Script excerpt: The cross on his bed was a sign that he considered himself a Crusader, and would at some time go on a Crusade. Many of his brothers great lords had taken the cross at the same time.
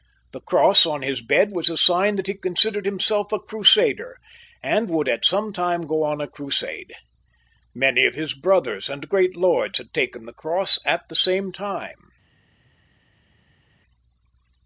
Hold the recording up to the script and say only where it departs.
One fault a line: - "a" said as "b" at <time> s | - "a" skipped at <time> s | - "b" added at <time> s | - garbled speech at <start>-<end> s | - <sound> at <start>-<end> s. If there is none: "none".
- "and" added at 8.9 s